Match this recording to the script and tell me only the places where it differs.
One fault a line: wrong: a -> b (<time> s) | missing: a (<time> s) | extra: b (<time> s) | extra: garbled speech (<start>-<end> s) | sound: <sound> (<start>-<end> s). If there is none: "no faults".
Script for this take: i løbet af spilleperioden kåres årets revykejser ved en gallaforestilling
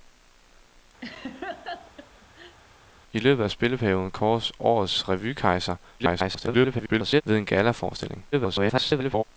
sound: laugh (1.0-2.6 s)
extra: garbled speech (6.0-7.2 s)
extra: garbled speech (8.3-9.2 s)